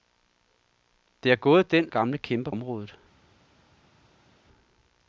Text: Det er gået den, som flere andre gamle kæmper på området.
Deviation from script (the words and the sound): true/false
true